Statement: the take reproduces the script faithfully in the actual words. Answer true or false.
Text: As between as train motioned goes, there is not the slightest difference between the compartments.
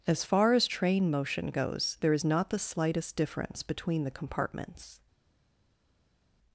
false